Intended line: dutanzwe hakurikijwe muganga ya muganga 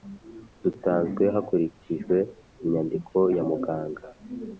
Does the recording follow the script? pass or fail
fail